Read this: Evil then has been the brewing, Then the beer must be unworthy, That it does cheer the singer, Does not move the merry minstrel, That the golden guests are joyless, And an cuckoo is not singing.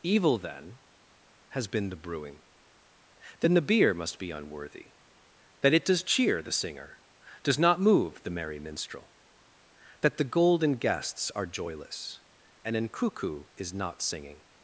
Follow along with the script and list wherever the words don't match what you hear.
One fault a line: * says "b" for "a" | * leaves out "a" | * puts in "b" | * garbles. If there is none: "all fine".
all fine